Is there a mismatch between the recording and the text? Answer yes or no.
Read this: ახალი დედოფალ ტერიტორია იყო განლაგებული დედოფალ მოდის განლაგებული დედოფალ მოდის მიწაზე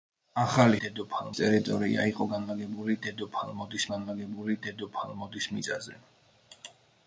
no